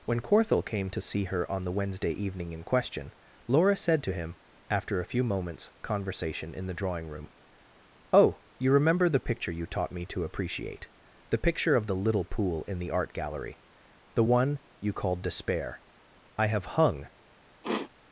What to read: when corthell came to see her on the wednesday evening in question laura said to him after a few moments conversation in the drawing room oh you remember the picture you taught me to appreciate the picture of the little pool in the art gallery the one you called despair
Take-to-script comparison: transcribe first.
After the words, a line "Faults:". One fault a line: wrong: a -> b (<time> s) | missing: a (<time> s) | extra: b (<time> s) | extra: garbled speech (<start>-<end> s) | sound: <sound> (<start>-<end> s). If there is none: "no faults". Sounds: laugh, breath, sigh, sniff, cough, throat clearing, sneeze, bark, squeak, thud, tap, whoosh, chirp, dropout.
when corthell came to see her on the wednesday evening in question laura said to him after a few moments conversation in the drawing room oh you remember the picture you taught me to appreciate the picture of the little pool in the art gallery the one you called despair i have hung
Faults:
extra: i have hung (16.4 s)
sound: sniff (17.6-17.9 s)